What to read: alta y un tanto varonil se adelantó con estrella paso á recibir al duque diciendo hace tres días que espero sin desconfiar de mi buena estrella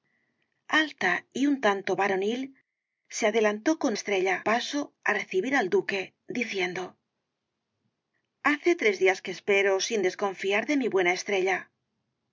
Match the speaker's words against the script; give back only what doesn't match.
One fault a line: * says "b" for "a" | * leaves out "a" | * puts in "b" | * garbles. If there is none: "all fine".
all fine